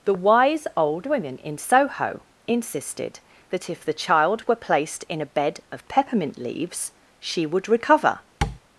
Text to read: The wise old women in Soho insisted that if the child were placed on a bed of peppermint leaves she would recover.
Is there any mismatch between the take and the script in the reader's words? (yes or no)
yes